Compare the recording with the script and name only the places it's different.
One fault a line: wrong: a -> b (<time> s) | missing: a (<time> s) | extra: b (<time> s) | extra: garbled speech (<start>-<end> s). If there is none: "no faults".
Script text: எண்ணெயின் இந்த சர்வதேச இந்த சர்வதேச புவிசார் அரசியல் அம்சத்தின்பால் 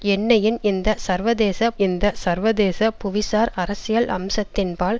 no faults